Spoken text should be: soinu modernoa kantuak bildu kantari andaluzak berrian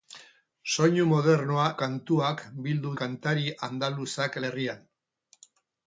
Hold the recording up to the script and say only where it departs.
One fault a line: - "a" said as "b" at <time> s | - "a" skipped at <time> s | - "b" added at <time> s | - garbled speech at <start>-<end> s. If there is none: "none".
none